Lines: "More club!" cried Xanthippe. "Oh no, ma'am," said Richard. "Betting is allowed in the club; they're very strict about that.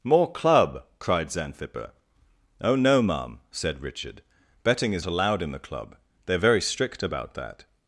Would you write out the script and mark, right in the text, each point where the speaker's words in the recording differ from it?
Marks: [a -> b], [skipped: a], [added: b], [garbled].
"More club!" cried Xanthippe. "Oh no, ma'am," said Richard. "Betting is allowed in the club; they're very strict about that.